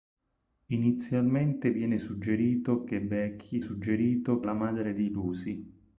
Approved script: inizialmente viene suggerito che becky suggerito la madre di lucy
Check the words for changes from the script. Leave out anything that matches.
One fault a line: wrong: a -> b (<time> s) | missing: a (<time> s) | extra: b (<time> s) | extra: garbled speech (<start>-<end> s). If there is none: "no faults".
no faults